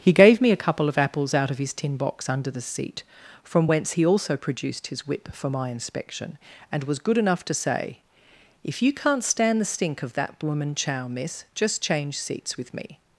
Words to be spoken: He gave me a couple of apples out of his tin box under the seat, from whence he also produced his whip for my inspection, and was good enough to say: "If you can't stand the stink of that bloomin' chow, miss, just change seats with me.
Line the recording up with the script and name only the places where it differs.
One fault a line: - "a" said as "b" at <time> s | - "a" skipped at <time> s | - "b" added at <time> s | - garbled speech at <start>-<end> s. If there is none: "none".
none